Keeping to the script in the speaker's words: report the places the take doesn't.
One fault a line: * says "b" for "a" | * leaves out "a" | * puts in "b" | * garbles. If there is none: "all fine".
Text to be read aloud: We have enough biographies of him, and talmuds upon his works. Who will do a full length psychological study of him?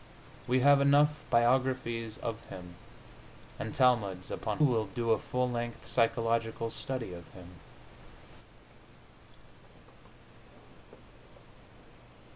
* leaves out "his works Who"